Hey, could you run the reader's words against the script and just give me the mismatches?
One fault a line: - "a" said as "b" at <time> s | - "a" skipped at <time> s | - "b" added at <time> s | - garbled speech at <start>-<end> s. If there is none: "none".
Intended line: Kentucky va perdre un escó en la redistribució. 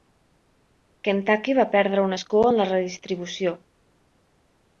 none